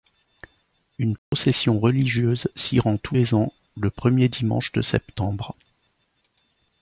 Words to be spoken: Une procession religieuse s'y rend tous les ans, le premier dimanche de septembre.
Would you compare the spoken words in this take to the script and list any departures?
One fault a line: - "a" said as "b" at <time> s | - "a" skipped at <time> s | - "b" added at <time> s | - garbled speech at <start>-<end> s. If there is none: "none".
none